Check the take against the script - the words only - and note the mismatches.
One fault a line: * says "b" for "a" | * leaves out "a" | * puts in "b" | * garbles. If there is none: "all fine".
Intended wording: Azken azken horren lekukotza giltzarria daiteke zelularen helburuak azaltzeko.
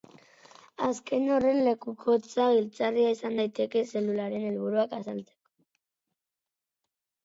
* leaves out "azken"
* puts in "izan"